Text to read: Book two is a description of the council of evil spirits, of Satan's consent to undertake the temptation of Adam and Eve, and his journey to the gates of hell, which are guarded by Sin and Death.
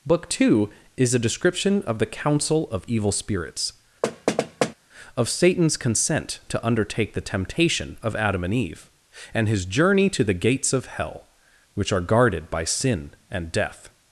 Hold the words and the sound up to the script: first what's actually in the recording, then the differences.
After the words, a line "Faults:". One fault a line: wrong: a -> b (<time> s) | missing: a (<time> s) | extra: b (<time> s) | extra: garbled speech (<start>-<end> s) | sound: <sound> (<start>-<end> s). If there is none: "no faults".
Book two is a description of the council of evil spirits, of Satan's consent to undertake the temptation of Adam and Eve, and his journey to the gates of hell, which are guarded by Sin and Death.
Faults:
sound: thud (4.0-4.7 s)